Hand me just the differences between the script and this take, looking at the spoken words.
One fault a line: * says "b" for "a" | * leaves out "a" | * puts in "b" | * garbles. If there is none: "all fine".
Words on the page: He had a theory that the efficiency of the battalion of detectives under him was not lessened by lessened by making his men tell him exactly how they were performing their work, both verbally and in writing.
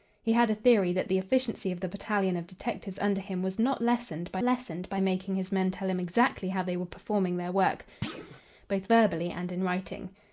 all fine